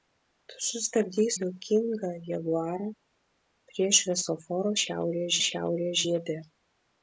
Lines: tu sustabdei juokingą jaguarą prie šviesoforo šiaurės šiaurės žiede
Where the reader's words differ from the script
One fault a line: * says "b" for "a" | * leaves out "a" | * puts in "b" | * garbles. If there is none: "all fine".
all fine